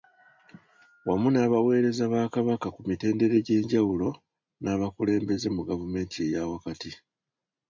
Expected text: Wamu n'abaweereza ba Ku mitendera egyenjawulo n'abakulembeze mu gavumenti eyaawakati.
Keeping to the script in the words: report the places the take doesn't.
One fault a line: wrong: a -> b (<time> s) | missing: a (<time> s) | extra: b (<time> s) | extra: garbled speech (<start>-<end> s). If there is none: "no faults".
extra: Kabaka (2.3 s)